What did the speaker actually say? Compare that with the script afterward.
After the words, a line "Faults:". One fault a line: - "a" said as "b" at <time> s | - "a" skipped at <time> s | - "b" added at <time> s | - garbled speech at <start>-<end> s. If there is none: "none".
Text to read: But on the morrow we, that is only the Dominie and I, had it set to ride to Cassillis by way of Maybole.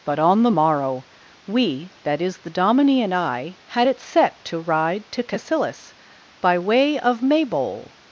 But on the morrow we, that is the Dominie and I, had it set to ride to Cassillis by way of Maybole.
Faults:
- "only" skipped at 2.4 s